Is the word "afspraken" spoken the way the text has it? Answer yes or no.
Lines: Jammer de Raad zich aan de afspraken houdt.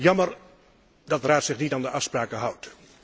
yes